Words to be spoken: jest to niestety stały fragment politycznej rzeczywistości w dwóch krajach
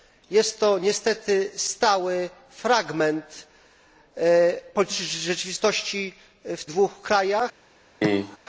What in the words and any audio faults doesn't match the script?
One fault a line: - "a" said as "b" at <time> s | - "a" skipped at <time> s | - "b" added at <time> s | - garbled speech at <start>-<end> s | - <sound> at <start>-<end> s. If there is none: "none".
- cough at 8.0-8.4 s